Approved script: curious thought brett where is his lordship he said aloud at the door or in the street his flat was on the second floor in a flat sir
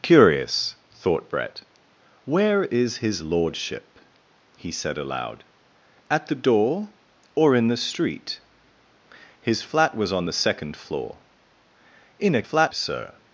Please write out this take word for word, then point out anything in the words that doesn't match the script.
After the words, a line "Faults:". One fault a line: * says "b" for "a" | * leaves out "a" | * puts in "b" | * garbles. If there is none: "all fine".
curious thought brett where is his lordship he said aloud at the door or in the street his flat was on the second floor in a flat sir
Faults:
all fine